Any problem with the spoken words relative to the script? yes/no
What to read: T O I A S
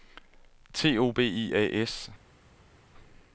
yes